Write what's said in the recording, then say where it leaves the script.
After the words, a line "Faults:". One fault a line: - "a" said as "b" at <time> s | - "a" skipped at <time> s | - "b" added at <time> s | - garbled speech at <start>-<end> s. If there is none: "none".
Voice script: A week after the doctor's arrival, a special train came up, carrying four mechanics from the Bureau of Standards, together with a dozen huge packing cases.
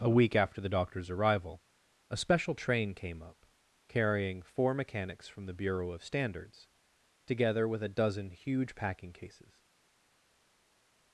A week after the doctor's arrival, a special train came up, carrying four mechanics from the Bureau of Standards, together with a dozen huge packing cases.
Faults:
none